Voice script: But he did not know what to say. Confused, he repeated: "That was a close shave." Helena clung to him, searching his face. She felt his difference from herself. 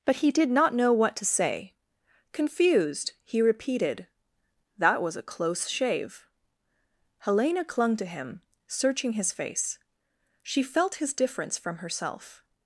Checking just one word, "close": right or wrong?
right